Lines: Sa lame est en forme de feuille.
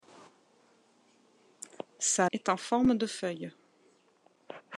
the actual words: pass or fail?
fail